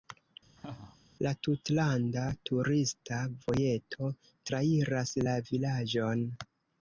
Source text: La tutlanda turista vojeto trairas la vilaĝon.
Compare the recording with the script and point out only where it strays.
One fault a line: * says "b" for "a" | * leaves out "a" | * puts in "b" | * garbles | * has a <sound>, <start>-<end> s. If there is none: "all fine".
* has a laugh, 0.6-1.0 s